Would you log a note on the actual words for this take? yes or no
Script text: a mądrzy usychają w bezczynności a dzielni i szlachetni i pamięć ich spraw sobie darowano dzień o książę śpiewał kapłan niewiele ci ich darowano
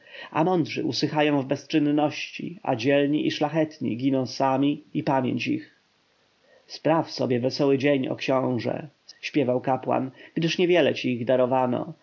yes